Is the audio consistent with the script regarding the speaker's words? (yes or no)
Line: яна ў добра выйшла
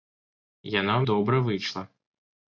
yes